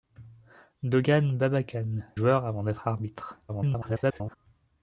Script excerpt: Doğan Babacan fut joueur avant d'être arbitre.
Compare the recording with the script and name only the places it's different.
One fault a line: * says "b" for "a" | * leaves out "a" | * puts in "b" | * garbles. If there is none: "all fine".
* leaves out "fut"
* garbles